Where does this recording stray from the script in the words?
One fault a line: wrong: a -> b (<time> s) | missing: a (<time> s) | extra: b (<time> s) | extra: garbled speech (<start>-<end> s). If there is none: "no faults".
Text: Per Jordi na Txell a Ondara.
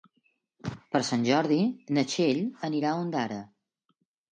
extra: Sant (1.1 s)
extra: anirà (2.7 s)